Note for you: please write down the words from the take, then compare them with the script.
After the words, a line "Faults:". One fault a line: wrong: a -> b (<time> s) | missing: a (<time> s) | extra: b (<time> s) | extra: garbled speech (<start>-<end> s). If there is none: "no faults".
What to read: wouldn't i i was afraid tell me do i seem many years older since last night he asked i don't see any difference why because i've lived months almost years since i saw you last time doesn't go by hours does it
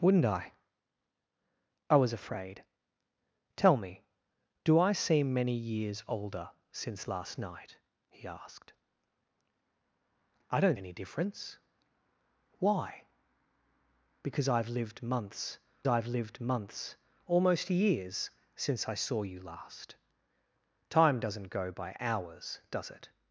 wouldn't i i was afraid tell me do i seem many years older since last night he asked i don't any difference why because i've lived months i've lived months almost years since i saw you last time doesn't go by hours does it
Faults:
missing: see (10.8 s)
extra: i've lived months (15.9 s)